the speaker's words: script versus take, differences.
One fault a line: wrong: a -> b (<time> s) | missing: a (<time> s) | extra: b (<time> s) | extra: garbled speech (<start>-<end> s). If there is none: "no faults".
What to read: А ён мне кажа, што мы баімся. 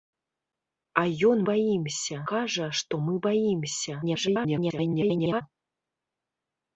wrong: мне -> баімся (1.5 s)
extra: garbled speech (4.0-5.4 s)